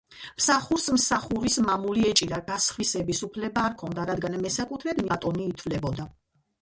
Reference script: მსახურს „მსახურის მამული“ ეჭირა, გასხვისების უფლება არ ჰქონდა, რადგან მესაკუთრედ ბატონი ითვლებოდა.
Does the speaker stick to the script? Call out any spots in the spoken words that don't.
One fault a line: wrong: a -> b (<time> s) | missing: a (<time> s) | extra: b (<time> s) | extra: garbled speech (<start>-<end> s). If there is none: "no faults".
no faults